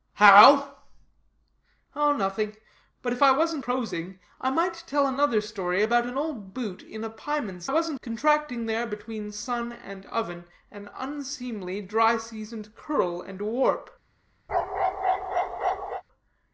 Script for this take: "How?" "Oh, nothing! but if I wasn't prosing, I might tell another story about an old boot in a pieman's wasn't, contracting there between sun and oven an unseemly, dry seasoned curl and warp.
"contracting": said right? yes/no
yes